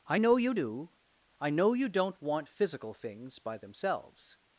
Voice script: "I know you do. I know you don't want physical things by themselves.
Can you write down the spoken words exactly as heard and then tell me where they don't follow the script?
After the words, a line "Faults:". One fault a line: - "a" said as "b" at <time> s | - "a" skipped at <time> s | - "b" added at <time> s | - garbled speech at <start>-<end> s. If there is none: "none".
"I know you do. I know you don't want physical things by themselves.
Faults:
none